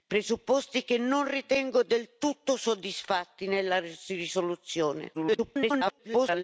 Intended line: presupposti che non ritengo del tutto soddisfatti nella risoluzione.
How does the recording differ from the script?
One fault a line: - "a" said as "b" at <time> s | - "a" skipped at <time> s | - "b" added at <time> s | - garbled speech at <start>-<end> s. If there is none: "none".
- garbled speech at 5.1-6.4 s